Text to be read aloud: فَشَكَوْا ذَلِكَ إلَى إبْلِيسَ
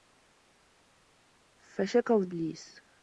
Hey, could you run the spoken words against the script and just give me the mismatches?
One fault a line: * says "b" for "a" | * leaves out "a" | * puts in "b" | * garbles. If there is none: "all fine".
* leaves out "ذَلِكَ إلَى"